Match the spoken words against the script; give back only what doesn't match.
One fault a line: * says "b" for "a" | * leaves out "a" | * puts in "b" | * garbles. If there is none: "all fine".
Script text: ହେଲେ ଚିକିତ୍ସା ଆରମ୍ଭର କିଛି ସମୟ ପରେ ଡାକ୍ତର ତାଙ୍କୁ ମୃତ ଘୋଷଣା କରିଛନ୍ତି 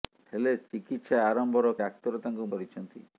* leaves out "କିଛି ସମୟ ପରେ"
* leaves out "ମୃତ ଘୋଷଣା"